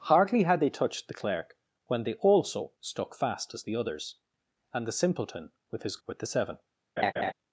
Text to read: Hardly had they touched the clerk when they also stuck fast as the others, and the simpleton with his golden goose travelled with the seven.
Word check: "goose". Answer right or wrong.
wrong